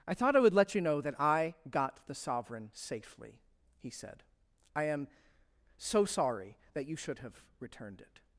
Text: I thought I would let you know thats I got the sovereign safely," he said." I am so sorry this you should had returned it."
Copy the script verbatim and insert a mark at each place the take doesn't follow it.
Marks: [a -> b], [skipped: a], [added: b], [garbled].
I thought I would let you know [thats -> that] I got the sovereign safely," he said." I am so sorry [this -> that] you should [had -> have] returned it."